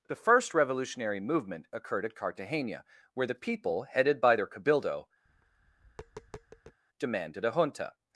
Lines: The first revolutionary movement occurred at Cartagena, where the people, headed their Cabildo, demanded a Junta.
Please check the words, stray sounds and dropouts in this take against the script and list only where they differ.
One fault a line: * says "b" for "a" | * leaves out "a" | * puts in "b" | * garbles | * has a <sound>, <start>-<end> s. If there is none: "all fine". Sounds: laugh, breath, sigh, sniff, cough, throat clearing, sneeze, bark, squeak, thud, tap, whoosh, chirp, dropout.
* puts in "by"
* has a tap, 5.3-6.8 s